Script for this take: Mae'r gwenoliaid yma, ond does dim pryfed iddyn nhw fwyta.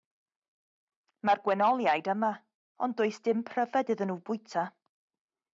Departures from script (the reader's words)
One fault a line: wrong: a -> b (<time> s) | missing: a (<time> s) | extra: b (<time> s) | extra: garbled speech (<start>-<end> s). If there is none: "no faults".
no faults